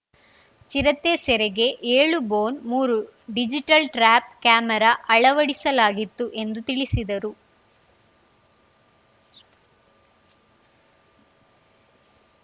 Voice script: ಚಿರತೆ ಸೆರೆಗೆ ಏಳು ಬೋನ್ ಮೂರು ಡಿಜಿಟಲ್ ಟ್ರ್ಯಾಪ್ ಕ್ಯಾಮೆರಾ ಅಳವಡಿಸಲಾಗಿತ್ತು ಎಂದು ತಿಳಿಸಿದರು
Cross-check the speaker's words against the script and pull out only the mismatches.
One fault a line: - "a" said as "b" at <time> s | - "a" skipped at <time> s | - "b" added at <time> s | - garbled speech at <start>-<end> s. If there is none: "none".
none